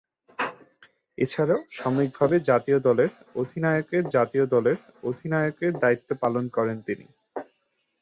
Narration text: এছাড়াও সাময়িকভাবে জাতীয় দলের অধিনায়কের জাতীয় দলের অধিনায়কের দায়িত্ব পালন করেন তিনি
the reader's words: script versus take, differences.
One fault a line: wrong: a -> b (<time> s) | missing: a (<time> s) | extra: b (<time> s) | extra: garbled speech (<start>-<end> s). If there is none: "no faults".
no faults